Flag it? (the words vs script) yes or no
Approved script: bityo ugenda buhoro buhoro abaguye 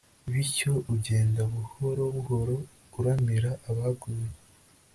yes